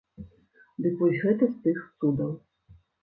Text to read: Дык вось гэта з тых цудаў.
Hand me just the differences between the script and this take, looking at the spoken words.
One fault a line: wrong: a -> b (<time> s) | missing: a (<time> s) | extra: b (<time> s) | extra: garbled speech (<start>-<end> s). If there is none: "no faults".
no faults